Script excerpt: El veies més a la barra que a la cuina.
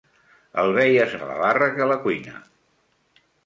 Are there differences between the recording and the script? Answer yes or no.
yes